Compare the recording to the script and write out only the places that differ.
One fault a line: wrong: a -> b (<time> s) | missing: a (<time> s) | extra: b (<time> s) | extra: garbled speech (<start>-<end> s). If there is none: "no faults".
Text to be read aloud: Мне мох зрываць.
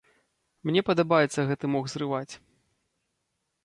extra: падабаецца гэты (0.9 s)